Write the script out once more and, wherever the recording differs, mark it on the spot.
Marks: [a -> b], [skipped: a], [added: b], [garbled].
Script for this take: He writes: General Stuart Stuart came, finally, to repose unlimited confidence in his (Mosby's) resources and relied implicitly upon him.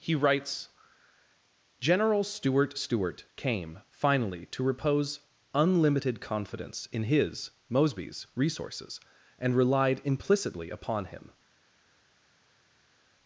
He writes: General Stuart Stuart came, finally, to repose unlimited confidence in his (Mosby's) resources and relied implicitly upon him.